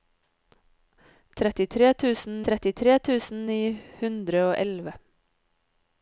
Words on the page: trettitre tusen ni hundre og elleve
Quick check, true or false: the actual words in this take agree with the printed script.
false